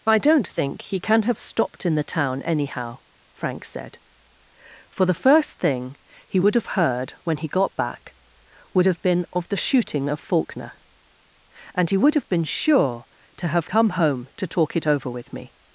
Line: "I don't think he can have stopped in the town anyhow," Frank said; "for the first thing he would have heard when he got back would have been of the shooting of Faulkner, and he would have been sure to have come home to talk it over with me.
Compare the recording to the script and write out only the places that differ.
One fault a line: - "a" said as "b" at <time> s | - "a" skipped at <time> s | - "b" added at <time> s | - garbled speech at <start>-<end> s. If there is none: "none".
none